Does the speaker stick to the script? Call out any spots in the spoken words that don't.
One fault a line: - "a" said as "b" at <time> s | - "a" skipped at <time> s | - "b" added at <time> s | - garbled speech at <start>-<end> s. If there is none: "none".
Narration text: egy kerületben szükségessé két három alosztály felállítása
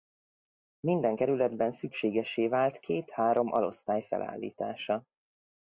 - "egy" said as "minden" at 0.8 s
- "vált" added at 2.5 s